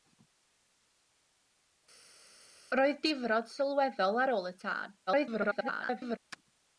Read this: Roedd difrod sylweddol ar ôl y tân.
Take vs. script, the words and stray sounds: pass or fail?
fail